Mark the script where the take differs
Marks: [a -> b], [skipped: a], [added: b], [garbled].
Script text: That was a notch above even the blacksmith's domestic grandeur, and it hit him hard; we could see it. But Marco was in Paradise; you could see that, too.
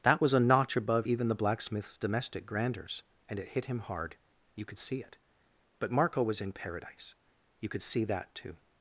That was a notch above even the blacksmith's domestic [grandeur, -> grandeurs] and it hit him hard; [we -> you] could see it. But Marco was in Paradise; you could see that, too.